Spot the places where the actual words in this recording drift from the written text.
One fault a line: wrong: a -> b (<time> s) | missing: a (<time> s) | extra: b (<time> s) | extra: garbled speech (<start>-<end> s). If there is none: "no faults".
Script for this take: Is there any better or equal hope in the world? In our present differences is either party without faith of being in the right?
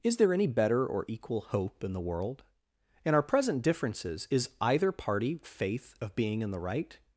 missing: without (5.4 s)